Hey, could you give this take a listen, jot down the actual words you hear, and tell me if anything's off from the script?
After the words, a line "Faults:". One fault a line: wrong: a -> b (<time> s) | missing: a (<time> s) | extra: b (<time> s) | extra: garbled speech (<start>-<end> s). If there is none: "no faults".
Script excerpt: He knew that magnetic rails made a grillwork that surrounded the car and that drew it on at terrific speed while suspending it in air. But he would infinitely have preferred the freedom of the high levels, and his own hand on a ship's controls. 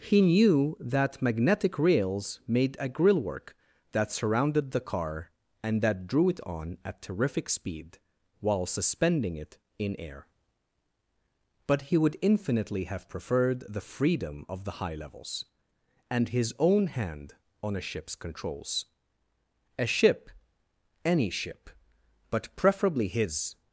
He knew that magnetic rails made a grillwork that surrounded the car and that drew it on at terrific speed while suspending it in air. But he would infinitely have preferred the freedom of the high levels, and his own hand on a ship's controls. A ship! any ship! but preferably his
Faults:
extra: A ship any ship but preferably his (19.8 s)